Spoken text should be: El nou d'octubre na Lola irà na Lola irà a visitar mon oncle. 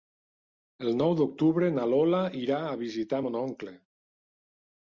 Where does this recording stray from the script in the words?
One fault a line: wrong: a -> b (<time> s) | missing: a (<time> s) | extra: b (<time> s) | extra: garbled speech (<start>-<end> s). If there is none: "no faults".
missing: na Lola irà (2.6 s)